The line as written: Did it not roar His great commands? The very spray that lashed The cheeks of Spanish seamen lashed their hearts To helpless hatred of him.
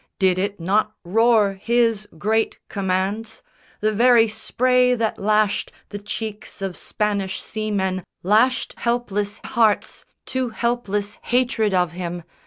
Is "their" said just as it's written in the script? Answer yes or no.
no